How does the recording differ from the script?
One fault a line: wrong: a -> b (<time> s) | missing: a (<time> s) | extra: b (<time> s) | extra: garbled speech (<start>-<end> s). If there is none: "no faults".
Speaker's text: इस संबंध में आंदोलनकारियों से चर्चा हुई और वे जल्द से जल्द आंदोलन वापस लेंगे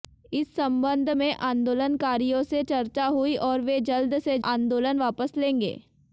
missing: जल्द (4.4 s)